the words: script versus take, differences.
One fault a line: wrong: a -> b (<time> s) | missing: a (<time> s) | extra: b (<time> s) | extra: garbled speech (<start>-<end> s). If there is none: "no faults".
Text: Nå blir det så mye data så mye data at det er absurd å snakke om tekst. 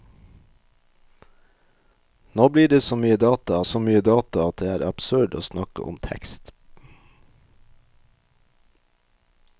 no faults